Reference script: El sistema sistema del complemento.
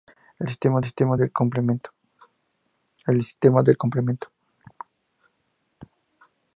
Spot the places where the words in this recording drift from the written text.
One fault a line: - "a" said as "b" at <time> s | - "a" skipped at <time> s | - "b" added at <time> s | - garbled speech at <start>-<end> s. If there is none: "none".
none